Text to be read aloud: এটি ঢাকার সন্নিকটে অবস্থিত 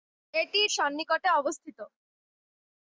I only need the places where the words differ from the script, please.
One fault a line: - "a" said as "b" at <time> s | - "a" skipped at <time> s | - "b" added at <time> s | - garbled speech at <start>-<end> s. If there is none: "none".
- "ঢাকার" skipped at 0.6 s